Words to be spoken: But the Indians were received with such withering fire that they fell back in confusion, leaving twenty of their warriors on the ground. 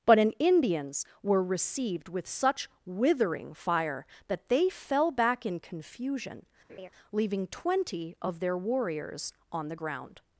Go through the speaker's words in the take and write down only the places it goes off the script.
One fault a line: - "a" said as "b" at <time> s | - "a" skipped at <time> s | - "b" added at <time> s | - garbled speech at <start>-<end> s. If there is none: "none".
- "the" said as "an" at 0.2 s